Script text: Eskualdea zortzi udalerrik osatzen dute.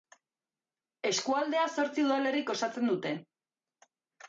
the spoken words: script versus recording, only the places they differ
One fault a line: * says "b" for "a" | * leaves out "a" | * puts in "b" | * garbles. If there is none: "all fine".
all fine